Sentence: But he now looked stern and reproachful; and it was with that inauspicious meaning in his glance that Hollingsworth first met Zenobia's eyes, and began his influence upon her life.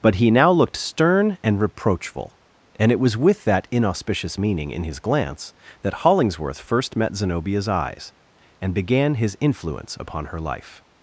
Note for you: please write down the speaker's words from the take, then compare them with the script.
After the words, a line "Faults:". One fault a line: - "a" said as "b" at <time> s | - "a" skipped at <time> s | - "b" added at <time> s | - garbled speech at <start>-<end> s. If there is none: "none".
But he now looked stern and reproachful; and it was with that inauspicious meaning in his glance that Hollingsworth first met Zenobia's eyes, and began his influence upon her life.
Faults:
none